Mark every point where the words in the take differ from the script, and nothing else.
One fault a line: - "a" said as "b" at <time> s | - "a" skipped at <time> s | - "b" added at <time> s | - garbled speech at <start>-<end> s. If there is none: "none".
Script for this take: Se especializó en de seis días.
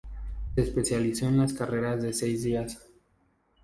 - "las carreras" added at 1.4 s